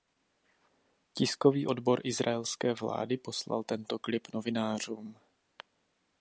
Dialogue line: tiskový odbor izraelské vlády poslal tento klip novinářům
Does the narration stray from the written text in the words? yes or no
no